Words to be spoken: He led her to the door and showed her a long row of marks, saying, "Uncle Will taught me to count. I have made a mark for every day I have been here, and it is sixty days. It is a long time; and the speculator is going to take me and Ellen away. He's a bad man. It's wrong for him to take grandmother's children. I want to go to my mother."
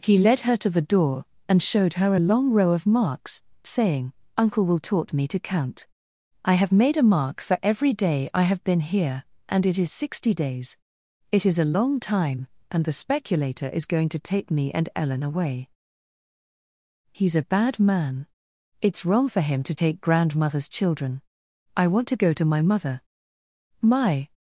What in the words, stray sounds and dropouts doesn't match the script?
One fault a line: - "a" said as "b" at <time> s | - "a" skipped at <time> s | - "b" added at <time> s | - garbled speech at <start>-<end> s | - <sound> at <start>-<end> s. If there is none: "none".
- "My" added at 23.8 s